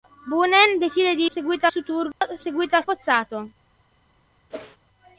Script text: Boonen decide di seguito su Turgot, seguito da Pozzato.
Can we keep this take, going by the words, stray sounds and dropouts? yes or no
no